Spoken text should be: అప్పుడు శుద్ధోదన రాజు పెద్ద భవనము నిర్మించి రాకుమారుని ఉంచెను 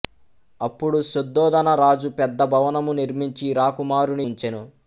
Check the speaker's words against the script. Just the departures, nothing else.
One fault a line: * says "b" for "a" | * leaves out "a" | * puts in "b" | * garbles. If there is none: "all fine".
all fine